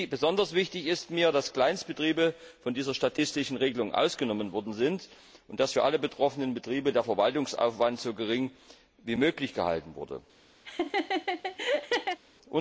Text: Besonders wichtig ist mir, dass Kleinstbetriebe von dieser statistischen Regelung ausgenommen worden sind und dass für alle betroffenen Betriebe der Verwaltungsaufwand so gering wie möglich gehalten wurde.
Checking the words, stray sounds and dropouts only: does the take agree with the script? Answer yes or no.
no